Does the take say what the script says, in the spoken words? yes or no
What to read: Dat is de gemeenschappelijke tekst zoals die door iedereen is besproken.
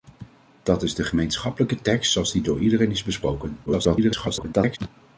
no